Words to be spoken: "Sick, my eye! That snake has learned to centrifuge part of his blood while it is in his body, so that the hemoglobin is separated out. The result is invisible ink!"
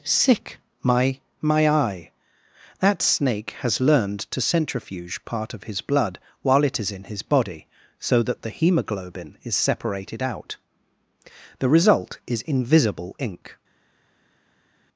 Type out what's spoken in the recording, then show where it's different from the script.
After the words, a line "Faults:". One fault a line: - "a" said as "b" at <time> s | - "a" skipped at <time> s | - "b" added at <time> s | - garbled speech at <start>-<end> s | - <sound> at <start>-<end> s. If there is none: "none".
"Sick, my my eye! That snake has learned to centrifuge part of his blood while it is in his body, so that the hemoglobin is separated out. The result is invisible ink!"
Faults:
- "my" added at 1.4 s